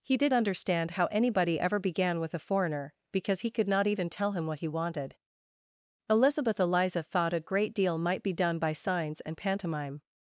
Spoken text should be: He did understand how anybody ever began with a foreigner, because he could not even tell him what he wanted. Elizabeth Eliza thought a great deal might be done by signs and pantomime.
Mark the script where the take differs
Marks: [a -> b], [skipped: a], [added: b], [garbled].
He did understand how anybody ever began with a foreigner, because he could not even tell him what he wanted. Elizabeth Eliza thought a great deal might be done by signs and pantomime.